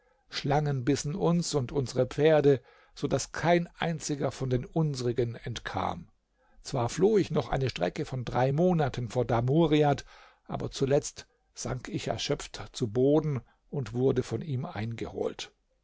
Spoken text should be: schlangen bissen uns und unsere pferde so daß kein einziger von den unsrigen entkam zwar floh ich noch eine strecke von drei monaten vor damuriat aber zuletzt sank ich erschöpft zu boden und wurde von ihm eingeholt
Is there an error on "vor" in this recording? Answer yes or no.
no